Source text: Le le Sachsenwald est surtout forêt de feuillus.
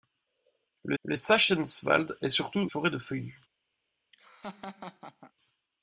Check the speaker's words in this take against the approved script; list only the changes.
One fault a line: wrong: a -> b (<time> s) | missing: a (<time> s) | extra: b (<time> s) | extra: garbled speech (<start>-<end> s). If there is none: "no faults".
no faults